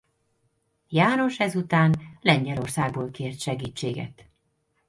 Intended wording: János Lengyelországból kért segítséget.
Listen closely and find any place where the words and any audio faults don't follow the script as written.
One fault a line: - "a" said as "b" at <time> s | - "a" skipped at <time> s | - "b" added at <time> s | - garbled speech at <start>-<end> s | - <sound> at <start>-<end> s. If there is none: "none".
- "ezután" added at 1.4 s